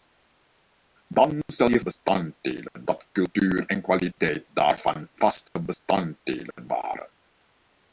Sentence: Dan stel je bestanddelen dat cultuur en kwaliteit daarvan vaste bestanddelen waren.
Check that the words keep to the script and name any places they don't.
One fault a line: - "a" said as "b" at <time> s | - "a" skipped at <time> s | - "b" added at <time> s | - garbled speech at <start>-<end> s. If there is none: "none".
none